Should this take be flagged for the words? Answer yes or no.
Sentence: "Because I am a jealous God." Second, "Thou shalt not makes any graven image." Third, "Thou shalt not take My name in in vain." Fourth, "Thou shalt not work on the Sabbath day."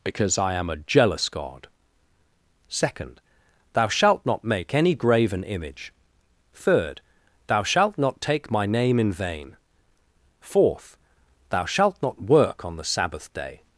yes